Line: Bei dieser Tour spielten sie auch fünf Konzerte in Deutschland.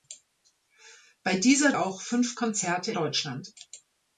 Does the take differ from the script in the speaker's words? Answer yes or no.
yes